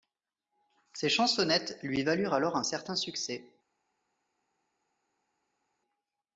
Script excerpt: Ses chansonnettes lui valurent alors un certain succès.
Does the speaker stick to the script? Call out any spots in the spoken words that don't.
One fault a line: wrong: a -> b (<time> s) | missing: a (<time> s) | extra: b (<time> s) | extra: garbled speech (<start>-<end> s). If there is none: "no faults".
no faults